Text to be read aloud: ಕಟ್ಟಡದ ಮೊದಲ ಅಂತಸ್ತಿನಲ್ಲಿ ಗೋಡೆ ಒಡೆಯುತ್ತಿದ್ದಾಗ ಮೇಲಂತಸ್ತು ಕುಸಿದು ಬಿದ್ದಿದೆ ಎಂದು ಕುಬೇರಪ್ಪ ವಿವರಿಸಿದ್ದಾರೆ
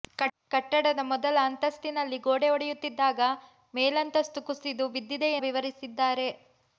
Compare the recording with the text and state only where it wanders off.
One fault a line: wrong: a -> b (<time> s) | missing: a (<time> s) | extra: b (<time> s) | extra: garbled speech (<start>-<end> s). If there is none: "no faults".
missing: ಎಂದು ಕುಬೇರಪ್ಪ (5.3 s)